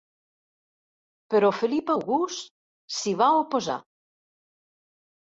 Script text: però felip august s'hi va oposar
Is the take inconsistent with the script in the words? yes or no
no